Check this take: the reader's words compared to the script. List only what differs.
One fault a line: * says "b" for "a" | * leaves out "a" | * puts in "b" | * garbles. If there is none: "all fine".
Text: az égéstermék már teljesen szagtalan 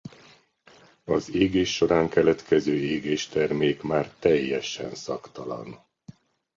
* puts in "égés során keletkező"